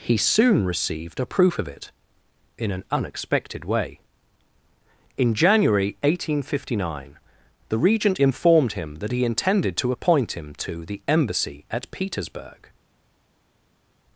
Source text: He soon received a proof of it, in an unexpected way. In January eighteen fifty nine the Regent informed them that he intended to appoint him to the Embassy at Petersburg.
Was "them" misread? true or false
true